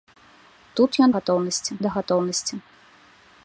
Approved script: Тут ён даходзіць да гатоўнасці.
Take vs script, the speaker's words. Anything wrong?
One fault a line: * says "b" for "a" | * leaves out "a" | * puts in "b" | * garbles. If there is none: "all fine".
* says "гатоўнасці" for "даходзіць"